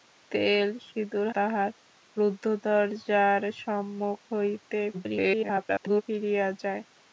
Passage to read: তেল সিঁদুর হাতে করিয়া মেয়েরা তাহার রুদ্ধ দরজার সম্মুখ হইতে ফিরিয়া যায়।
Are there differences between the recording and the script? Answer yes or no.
yes